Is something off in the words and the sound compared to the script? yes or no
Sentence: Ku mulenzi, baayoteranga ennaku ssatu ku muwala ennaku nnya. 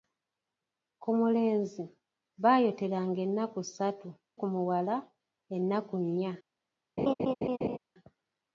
yes